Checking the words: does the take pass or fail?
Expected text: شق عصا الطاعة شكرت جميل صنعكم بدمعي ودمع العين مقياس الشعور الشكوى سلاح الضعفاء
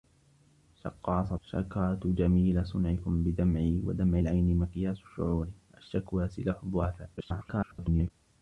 fail